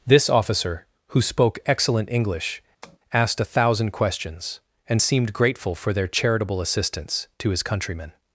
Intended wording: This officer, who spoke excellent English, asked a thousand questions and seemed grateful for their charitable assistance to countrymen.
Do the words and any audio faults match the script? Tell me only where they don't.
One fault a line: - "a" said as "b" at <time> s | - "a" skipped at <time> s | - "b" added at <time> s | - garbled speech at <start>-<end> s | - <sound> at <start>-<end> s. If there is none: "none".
- tap at 2.8-3.0 s
- "his" added at 7.5 s